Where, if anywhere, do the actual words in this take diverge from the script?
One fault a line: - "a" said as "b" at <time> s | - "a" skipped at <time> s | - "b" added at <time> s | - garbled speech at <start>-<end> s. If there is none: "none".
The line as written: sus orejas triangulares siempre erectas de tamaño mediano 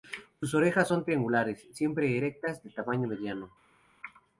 - "son" added at 0.9 s